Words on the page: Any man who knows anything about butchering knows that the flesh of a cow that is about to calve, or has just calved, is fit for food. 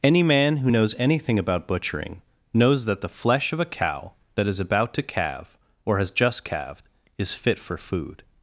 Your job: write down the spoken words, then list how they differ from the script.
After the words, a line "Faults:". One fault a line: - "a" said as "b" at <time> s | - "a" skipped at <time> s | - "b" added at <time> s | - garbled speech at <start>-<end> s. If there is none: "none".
Any man who knows anything about butchering knows that the flesh of a cow that is about to calve, or has just calved, is fit for food.
Faults:
none